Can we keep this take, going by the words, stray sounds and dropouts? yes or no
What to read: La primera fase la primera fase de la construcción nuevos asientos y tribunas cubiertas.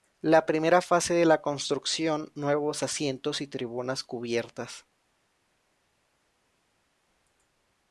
no